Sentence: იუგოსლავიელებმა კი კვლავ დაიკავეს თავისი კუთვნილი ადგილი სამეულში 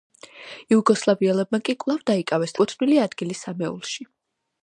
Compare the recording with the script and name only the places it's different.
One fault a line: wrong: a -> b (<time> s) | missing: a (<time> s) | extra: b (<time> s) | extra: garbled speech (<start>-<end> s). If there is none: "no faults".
missing: თავისი (2.6 s)